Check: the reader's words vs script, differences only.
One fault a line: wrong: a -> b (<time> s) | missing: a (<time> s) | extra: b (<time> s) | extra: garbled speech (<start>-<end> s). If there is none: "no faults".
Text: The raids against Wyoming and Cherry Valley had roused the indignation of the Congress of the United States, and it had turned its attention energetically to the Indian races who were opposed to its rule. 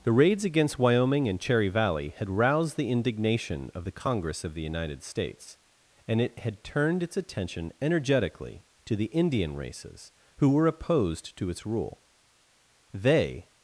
extra: They (12.9 s)